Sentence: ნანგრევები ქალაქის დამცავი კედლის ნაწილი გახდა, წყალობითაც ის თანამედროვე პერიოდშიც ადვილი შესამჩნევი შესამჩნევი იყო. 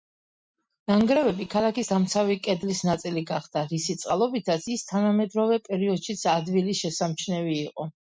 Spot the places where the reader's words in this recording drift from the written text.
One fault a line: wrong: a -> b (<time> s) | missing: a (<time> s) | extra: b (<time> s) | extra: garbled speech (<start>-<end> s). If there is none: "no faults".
extra: რისი (3.7 s)
missing: შესამჩნევი (7.6 s)